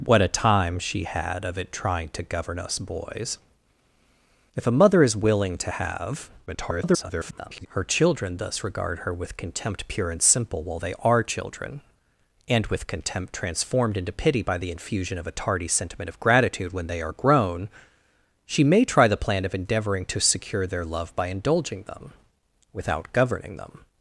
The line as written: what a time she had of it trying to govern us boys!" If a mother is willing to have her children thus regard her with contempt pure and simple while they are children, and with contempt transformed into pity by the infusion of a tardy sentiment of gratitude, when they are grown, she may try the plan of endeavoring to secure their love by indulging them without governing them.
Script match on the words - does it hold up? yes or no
no